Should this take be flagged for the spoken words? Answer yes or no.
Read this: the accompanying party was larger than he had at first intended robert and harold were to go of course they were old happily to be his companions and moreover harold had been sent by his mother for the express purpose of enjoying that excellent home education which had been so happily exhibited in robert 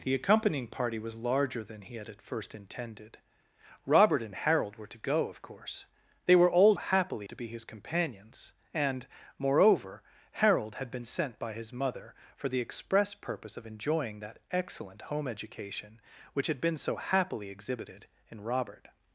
no